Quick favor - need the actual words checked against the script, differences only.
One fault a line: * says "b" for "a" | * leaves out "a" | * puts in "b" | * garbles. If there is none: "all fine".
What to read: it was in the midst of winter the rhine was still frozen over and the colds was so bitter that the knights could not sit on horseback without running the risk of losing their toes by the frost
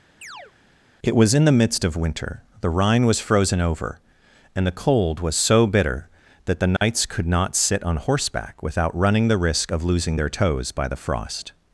* leaves out "still"
* says "cold" for "colds"